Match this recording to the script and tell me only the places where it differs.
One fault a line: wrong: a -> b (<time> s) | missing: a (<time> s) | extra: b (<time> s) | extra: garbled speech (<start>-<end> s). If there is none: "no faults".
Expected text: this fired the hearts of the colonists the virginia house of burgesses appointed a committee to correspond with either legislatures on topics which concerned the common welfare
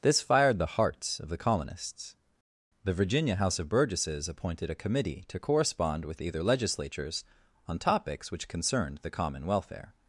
no faults